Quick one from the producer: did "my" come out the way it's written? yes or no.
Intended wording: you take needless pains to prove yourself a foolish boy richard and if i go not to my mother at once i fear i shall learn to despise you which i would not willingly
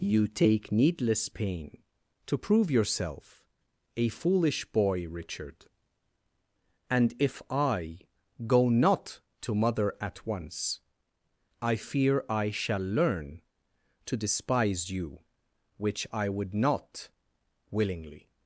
no